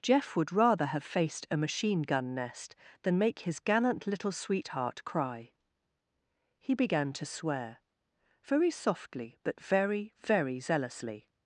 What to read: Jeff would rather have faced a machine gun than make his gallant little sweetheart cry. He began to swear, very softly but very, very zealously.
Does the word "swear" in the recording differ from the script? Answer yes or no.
no